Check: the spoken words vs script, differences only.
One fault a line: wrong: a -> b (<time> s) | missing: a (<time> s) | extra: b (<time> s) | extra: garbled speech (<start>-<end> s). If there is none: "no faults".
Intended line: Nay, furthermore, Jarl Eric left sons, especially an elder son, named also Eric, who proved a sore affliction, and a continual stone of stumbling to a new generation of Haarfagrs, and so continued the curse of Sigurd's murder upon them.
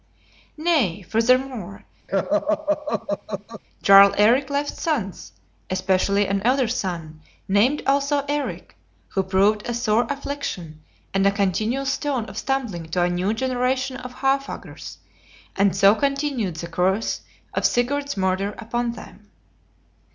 no faults